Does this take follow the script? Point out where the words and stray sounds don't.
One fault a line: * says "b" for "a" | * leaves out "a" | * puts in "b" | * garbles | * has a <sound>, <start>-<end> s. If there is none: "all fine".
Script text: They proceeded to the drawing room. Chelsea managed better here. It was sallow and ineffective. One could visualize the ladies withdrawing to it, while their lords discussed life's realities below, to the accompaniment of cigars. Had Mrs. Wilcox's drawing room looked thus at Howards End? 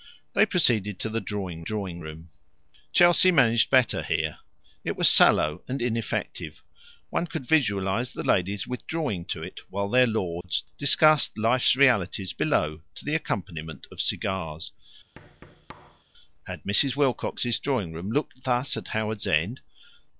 * puts in "drawing"
* has a dropout, 10.4-10.4 s
* has a thud, 15.1-16.0 s